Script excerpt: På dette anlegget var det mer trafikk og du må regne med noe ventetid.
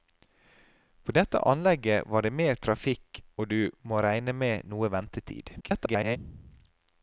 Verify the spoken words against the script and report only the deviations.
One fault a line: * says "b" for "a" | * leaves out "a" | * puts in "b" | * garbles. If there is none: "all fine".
* garbles